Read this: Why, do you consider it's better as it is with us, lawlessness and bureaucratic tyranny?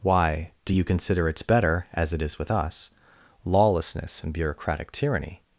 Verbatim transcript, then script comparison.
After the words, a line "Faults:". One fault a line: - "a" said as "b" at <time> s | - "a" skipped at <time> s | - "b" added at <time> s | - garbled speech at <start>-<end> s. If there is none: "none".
Why, do you consider it's better as it is with us, lawlessness and bureaucratic tyranny?
Faults:
none